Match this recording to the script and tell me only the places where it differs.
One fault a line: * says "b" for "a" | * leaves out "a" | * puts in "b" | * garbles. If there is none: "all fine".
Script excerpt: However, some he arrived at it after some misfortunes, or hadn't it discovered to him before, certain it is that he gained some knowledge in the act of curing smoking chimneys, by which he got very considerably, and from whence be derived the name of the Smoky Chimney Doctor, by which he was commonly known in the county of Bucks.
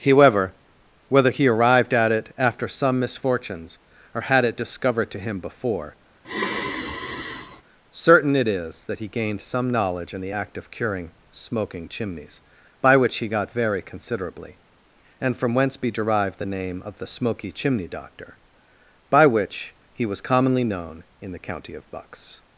* says "whether" for "some"
* says "had" for "hadn't"